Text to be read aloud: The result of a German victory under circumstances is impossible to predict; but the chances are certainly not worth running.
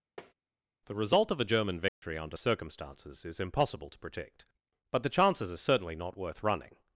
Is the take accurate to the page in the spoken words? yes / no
yes